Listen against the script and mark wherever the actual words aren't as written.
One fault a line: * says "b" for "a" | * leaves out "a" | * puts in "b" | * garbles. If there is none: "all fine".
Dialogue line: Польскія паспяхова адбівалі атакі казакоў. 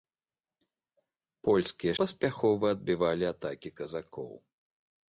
all fine